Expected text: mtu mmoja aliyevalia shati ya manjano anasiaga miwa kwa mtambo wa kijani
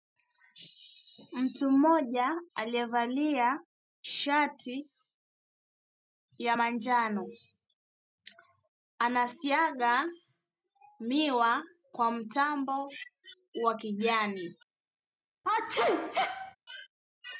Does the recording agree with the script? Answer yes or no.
yes